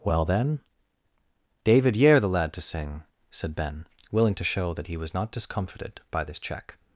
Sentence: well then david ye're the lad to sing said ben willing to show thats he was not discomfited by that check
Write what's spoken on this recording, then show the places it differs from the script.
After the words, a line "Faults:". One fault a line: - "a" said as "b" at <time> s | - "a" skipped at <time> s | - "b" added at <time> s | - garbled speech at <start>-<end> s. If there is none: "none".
well then david ye're the lad to sing said ben willing to show that he was not discomfited by this check
Faults:
- "thats" said as "that" at 4.7 s
- "that" said as "this" at 6.2 s